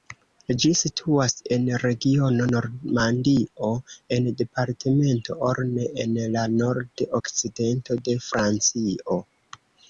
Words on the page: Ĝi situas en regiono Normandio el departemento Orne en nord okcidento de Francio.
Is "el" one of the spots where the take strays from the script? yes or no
yes